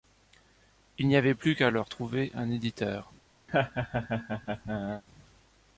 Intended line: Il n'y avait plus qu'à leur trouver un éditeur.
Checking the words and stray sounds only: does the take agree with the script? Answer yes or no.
no